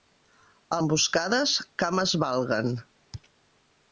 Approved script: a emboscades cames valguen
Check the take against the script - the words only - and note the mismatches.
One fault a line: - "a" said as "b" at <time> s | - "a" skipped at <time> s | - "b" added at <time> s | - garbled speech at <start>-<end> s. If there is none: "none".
none